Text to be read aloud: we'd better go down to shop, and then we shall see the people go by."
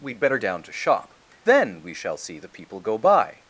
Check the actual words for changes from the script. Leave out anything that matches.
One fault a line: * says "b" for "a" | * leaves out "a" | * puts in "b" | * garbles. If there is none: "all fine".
* leaves out "go"
* leaves out "and"